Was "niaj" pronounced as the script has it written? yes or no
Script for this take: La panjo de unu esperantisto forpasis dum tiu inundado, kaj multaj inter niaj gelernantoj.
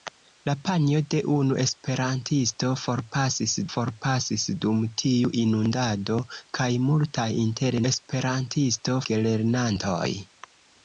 no